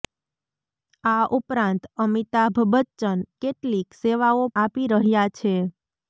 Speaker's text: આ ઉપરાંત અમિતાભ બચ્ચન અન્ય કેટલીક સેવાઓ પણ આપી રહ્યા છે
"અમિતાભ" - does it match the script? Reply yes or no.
yes